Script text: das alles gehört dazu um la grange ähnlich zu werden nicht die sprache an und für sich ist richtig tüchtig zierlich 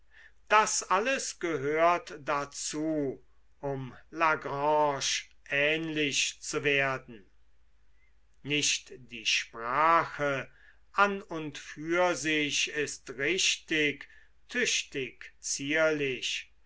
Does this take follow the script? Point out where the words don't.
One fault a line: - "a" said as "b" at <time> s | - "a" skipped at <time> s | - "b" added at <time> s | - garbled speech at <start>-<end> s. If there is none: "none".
none